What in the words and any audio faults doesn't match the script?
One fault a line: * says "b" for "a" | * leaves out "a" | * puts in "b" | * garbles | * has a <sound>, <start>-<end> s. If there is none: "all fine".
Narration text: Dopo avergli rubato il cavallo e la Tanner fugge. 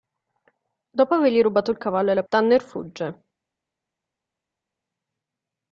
all fine